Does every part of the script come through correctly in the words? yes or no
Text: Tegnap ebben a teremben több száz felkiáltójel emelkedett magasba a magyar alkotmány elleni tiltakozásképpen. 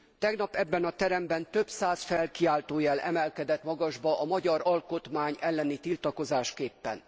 yes